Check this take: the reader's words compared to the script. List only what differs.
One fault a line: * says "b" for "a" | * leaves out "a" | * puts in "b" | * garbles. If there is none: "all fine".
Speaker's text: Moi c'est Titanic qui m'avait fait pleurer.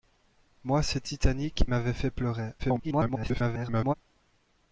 * leaves out "qui"
* garbles